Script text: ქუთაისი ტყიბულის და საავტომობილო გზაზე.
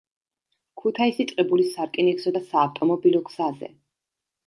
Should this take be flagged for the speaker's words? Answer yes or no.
yes